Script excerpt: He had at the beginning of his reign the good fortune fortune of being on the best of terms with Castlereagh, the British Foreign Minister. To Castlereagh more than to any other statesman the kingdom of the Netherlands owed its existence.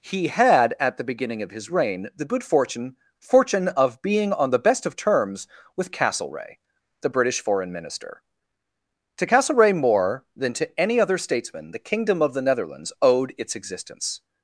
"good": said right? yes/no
yes